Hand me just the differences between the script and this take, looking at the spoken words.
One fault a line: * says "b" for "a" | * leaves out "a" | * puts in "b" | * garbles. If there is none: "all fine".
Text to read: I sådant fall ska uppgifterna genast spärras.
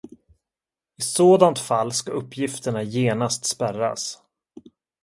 all fine